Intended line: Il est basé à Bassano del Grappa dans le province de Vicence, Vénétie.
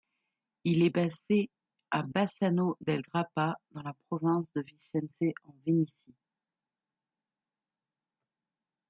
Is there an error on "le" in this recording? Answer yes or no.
yes